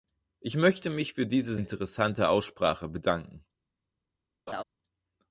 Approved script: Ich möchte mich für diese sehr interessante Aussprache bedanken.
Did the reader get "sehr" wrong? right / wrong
wrong